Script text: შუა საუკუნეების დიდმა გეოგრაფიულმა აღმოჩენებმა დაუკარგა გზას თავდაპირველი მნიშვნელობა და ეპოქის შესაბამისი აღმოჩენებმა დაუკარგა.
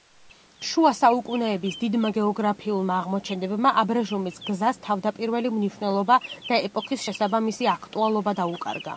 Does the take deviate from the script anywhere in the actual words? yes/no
yes